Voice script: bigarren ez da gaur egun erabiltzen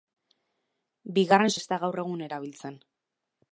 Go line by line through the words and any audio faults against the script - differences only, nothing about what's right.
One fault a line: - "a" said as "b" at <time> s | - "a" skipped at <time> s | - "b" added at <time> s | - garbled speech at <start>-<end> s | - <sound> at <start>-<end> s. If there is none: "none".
none